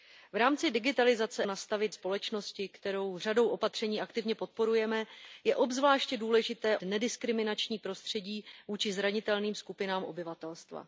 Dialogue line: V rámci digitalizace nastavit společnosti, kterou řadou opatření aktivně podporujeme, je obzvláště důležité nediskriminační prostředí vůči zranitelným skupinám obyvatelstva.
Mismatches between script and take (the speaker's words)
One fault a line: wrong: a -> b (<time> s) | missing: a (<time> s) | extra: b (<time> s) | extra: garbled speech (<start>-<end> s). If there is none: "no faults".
no faults